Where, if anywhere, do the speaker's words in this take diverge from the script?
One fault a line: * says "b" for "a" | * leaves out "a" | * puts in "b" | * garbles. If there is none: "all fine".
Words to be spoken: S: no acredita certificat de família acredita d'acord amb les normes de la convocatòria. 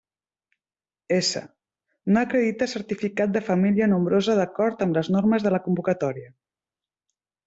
* says "nombrosa" for "acredita"